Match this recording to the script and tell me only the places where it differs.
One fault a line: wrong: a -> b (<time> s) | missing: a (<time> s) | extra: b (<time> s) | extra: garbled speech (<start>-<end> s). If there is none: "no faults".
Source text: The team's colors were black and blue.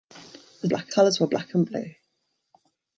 wrong: team's -> black (0.7 s)